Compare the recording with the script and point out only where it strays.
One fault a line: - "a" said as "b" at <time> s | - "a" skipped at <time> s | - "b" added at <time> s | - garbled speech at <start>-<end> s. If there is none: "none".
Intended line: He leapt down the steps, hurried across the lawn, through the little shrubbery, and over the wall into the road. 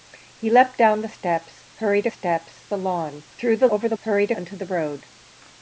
- "across" said as "steps" at 2.1 s
- "little shrubbery and" skipped at 3.7 s
- "wall" said as "hurried" at 4.0 s